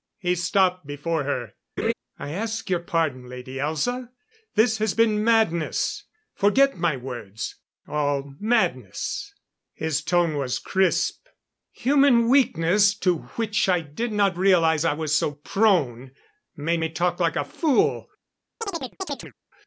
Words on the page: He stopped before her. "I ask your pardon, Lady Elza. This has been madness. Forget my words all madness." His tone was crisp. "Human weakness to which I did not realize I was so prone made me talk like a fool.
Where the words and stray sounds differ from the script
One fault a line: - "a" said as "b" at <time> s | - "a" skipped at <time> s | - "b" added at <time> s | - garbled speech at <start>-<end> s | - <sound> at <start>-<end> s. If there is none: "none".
- laugh at 1.8-1.9 s
- chirp at 18.6-19.3 s